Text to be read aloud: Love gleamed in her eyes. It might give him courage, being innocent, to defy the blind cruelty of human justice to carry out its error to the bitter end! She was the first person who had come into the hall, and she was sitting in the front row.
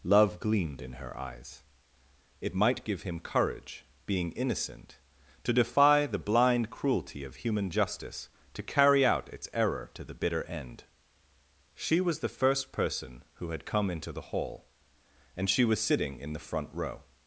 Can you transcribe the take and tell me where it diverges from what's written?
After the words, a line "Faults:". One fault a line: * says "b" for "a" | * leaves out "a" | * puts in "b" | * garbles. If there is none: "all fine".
Love gleamed in her eyes. It might give him courage, being innocent, to defy the blind cruelty of human justice to carry out its error to the bitter end! She was the first person who had come into the hall, and she was sitting in the front row.
Faults:
all fine